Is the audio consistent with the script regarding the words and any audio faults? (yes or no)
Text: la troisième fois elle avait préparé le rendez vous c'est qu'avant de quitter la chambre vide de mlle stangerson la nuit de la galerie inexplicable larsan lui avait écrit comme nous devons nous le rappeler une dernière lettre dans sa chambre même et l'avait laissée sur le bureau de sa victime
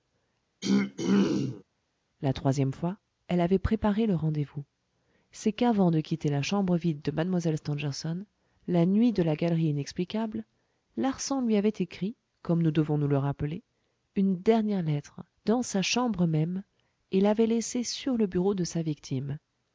no